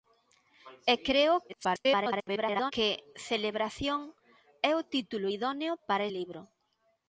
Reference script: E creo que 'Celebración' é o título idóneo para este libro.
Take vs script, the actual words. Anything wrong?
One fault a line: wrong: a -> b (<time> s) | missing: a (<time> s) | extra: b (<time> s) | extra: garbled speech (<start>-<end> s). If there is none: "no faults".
extra: garbled speech (1.5-2.7 s)
missing: este (6.1 s)